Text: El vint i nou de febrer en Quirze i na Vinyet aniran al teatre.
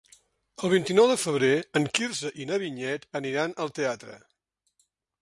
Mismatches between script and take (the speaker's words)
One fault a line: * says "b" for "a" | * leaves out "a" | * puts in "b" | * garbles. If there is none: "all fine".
all fine